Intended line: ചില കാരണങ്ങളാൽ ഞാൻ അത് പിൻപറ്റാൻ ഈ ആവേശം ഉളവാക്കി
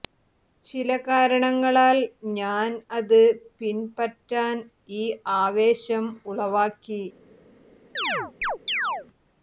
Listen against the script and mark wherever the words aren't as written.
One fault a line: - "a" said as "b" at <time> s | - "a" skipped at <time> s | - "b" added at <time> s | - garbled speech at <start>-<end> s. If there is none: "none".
none